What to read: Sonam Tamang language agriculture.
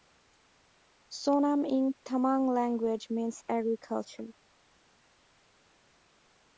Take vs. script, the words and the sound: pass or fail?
fail